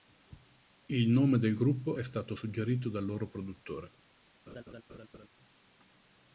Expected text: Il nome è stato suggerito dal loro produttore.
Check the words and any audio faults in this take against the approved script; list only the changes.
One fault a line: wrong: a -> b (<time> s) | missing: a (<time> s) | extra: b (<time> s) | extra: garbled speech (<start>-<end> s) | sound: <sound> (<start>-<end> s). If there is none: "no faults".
extra: del gruppo (1.4 s)
sound: laugh (4.5-5.3 s)